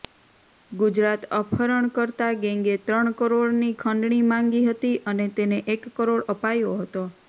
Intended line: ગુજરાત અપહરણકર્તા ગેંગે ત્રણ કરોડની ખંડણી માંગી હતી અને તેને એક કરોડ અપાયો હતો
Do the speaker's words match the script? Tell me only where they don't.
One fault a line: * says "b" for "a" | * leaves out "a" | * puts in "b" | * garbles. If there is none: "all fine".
all fine